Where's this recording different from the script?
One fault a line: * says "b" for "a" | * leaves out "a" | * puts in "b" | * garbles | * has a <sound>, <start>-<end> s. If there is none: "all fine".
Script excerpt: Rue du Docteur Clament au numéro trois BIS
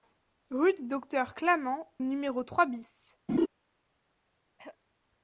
* leaves out "au"
* has a laugh, 3.3-3.5 s
* has a throat clearing, 4.6-4.8 s